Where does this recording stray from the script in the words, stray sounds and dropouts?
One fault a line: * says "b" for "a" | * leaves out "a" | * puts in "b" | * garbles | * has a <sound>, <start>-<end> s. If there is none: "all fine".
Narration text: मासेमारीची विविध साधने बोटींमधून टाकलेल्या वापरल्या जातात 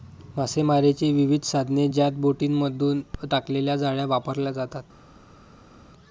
* puts in "ज्यात"
* puts in "जाळ्या"